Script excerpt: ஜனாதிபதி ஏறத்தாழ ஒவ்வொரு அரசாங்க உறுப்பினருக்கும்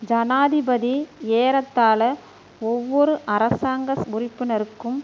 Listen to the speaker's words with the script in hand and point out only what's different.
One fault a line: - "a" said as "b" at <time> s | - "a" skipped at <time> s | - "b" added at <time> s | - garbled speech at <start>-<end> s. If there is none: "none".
none